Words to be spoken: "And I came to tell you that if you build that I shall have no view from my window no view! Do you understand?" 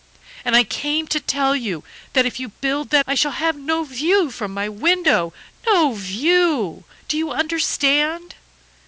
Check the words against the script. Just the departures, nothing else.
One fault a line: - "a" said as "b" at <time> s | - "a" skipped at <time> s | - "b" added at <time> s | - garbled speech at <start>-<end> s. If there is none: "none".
none